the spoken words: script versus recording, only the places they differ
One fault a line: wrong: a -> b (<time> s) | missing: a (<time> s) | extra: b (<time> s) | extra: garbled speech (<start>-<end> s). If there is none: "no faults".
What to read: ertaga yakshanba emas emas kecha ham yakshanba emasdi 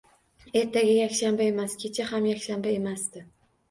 missing: emas (1.8 s)